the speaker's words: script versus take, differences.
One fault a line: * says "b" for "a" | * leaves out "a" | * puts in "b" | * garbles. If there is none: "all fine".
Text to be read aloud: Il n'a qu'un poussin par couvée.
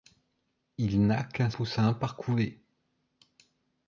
all fine